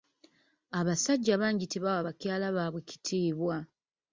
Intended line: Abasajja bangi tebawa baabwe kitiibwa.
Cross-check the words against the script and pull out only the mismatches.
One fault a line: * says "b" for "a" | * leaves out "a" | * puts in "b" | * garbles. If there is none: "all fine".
* puts in "bakyala"